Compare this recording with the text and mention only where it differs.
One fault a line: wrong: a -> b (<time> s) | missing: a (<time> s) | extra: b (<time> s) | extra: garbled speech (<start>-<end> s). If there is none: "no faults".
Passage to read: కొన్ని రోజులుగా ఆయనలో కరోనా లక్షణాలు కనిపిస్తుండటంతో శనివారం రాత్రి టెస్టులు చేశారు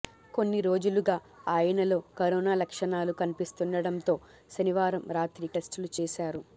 no faults